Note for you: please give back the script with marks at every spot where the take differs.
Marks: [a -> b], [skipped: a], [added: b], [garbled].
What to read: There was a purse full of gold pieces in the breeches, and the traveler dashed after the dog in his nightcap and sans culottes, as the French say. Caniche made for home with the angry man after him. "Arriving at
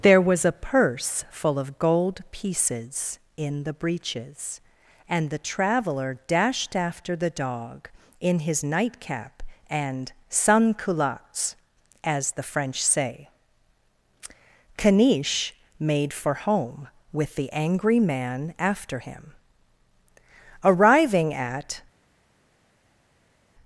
There was a purse full of gold pieces in the breeches, and the traveler dashed after the dog in his nightcap and sans culottes, as the French say. Caniche made for home with the angry man after him. "Arriving at